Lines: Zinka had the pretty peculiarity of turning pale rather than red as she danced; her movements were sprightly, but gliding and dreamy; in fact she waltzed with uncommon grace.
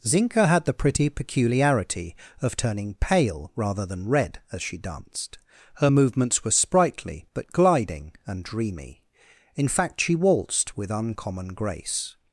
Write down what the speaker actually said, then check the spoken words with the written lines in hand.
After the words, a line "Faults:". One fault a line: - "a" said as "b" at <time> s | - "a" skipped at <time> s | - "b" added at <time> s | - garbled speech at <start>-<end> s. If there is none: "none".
Zinka had the pretty peculiarity of turning pale rather than red as she danced; her movements were sprightly, but gliding and dreamy; in fact she waltzed with uncommon grace.
Faults:
none